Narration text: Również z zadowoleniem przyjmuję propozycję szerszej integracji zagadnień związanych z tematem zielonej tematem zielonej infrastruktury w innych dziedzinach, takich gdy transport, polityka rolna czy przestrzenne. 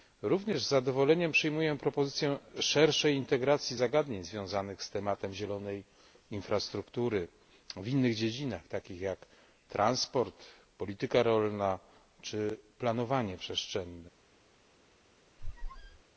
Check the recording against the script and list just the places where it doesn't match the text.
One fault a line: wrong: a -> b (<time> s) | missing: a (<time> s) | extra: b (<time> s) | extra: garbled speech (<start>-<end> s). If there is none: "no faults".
missing: tematem zielonej (5.8 s)
wrong: gdy -> jak (9.0 s)
extra: planowanie (12.8 s)